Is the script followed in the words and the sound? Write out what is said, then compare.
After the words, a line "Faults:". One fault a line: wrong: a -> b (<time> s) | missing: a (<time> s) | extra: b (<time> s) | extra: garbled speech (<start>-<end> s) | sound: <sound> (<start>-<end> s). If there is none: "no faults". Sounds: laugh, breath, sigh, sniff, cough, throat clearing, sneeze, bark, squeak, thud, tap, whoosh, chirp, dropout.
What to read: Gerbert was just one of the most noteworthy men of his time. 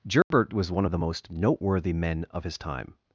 Gerbert was one of the most noteworthy men of his time.
Faults:
sound: dropout (0.2-0.3 s)
missing: just (0.7 s)